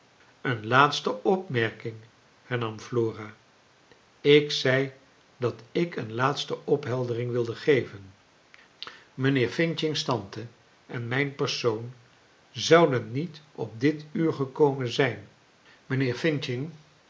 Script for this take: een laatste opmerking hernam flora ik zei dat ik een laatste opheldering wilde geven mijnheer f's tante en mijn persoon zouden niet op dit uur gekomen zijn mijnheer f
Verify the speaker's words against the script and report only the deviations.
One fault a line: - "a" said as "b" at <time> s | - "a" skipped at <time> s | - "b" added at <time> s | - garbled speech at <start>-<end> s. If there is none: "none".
none